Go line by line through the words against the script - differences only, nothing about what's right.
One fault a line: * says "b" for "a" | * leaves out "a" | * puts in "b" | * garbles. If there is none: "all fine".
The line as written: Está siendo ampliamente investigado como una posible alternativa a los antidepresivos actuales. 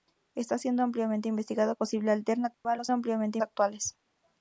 * leaves out "como una"
* says "ampliamente" for "antidepresivos"